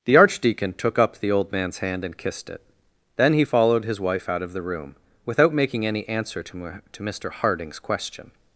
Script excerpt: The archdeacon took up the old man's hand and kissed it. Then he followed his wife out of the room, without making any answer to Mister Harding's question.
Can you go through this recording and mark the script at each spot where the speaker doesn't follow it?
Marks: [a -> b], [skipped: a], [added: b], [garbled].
The archdeacon took up the old man's hand and kissed it. Then he followed his wife out of the room, without making any answer to [added: to] Mister Harding's question.